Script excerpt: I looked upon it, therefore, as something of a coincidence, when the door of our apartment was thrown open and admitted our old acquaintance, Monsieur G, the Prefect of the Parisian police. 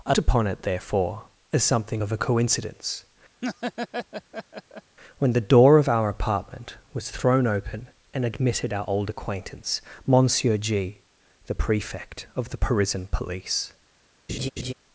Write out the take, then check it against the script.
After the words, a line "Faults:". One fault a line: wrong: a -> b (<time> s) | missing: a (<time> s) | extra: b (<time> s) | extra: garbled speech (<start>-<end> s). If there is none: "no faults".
I upon it, therefore, as something of a coincidence, when the door of our apartment was thrown open and admitted our old acquaintance, Monsieur G, the Prefect of the Parisian police.
Faults:
missing: looked (0.1 s)